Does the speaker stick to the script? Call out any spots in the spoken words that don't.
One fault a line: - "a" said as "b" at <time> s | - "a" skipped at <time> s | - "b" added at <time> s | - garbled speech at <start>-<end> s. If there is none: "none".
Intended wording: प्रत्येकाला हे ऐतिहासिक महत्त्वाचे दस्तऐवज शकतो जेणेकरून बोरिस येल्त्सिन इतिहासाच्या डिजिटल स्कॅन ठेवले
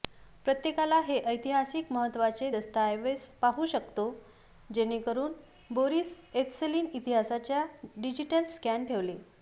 - "पाहू" added at 3.4 s